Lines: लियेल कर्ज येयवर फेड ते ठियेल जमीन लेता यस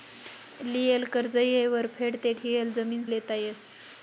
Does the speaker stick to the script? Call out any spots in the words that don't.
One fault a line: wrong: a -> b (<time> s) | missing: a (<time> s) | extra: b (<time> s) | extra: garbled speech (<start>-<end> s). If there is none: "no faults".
no faults